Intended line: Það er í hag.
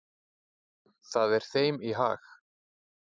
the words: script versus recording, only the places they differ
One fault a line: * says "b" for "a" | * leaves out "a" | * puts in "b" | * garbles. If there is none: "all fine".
* puts in "þeim"